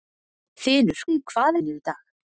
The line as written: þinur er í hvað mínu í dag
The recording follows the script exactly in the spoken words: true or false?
true